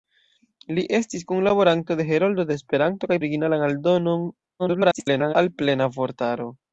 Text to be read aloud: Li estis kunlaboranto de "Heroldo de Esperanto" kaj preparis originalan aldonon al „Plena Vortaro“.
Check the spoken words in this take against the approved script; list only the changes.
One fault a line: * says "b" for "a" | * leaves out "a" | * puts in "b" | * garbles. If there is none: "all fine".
* leaves out "preparis"
* garbles